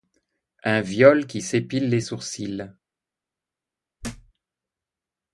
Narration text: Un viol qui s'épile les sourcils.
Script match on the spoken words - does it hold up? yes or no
yes